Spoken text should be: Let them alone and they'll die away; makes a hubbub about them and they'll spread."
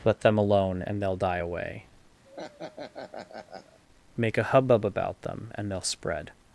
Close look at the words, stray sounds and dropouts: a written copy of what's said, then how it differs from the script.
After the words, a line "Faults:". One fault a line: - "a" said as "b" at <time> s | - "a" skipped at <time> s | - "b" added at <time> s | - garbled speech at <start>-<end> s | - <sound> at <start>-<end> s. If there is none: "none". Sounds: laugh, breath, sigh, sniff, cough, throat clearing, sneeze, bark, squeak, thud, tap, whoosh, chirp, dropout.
Let them alone and they'll die away; make a hubbub about them and they'll spread."
Faults:
- laugh at 2.2-3.8 s
- "makes" said as "make" at 4.2 s